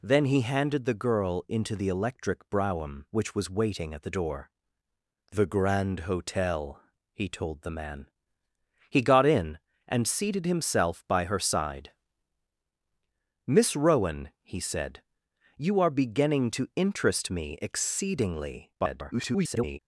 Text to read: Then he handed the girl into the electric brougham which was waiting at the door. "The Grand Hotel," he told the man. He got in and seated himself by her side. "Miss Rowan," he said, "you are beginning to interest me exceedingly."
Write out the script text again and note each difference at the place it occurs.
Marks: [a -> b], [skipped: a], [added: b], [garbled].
Then he handed the girl into the electric brougham which was waiting at the door. "The Grand Hotel," he told the man. He got in and seated himself by her side. "Miss Rowan," he said, "you are beginning to interest me exceedingly." [garbled]